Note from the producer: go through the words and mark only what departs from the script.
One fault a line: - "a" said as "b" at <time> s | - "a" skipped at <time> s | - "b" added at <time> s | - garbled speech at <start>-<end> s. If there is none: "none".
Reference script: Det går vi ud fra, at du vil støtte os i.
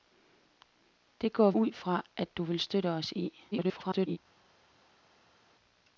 - "vi" skipped at 1.5 s
- garbled speech at 3.5-4.2 s